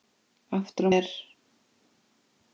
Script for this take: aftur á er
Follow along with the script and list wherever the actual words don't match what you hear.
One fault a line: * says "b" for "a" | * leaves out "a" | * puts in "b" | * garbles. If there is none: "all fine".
all fine